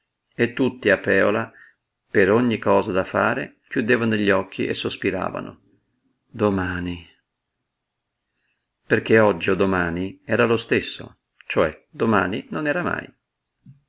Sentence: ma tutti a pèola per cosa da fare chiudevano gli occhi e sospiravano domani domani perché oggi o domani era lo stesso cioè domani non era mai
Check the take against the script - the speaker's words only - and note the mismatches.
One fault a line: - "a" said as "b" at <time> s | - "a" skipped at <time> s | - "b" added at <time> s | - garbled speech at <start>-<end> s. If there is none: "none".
- "ma" said as "e" at 0.3 s
- "ogni" added at 2.3 s
- "domani" skipped at 7.1 s